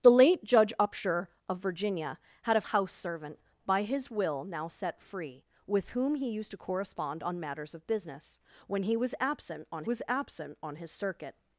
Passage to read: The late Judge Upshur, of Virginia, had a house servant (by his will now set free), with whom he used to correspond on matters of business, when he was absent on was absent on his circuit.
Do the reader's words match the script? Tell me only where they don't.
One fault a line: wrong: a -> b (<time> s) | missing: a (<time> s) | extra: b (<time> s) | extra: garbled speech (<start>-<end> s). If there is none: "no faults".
no faults